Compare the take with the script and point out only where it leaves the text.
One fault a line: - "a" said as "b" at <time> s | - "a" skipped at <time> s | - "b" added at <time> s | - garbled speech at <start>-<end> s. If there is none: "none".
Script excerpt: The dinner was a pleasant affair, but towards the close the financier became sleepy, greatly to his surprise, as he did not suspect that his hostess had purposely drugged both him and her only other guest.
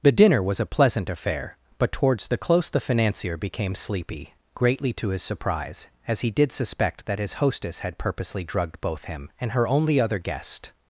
- "not" skipped at 6.5 s